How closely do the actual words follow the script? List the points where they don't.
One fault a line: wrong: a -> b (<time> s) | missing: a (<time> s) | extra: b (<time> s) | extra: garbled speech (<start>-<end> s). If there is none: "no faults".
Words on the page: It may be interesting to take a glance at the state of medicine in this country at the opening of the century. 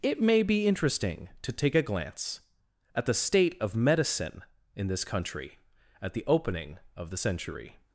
no faults